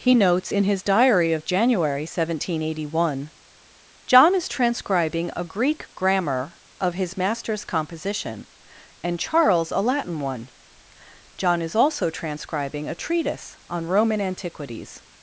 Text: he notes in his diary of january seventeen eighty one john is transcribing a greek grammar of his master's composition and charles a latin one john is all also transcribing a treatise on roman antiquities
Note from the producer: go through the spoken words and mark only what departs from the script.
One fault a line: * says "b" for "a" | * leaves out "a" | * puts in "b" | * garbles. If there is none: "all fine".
* leaves out "all"